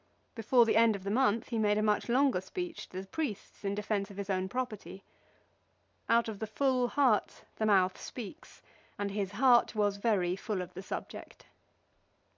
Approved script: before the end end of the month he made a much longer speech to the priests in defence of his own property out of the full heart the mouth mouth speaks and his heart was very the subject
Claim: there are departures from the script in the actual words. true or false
true